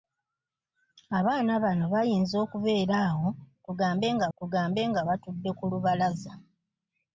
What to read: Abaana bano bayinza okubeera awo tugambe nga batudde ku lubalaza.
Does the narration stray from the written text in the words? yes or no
yes